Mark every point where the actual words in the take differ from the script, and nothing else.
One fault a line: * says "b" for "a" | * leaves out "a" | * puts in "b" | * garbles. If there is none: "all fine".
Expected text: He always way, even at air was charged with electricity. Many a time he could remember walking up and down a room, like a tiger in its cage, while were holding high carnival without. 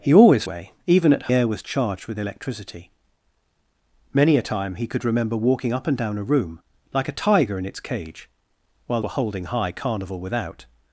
all fine